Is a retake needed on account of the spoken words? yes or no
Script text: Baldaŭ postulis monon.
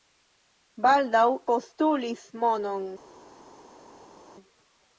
no